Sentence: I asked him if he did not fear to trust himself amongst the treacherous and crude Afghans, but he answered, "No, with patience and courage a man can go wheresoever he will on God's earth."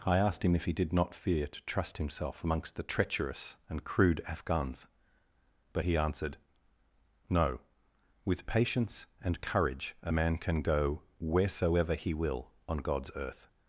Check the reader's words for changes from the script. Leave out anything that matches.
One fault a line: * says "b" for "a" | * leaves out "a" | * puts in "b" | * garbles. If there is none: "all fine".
all fine